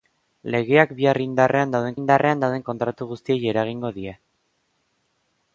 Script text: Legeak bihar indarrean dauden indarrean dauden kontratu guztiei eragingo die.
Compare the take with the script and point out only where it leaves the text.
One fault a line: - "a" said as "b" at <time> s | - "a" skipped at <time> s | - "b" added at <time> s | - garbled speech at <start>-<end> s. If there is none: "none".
none